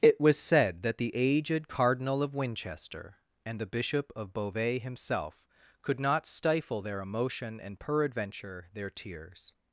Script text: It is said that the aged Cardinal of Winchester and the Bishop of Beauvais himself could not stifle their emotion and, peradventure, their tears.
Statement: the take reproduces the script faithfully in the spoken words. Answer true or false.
false